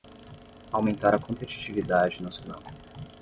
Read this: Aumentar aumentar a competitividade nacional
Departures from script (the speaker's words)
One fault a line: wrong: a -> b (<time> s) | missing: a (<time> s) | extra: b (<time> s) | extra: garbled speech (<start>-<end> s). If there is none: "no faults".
missing: aumentar (1.1 s)